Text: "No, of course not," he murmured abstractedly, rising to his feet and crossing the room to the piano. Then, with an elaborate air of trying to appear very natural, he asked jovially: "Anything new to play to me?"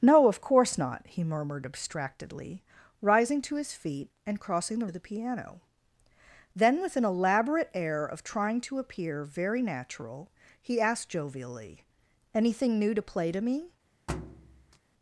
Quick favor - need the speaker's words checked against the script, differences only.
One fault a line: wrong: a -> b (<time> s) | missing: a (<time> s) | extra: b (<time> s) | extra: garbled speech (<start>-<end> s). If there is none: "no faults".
missing: room to (4.9 s)